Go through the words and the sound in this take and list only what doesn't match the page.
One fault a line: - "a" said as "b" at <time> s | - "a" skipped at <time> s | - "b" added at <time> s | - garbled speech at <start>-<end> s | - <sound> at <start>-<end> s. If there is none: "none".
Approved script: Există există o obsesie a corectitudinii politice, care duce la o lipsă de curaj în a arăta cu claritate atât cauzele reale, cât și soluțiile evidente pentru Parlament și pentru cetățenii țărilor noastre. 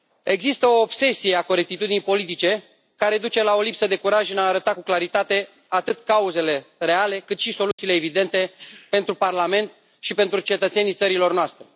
- "există" skipped at 0.7 s
- dropout at 7.7-7.8 s